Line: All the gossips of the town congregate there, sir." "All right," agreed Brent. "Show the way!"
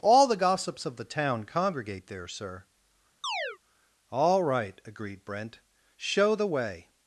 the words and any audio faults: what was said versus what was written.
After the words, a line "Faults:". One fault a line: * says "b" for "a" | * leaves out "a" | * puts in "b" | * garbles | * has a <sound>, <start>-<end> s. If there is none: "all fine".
All the gossips of the town congregate there, sir." "All right," agreed Brent. "Show the way!"
Faults:
* has a chirp, 3.2-3.6 s